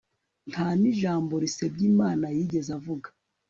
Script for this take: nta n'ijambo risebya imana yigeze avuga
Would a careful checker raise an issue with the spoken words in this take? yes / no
no